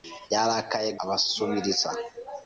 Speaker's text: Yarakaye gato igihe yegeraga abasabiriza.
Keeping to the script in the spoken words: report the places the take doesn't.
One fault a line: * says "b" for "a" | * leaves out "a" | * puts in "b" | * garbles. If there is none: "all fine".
* leaves out "gato igihe yegeraga"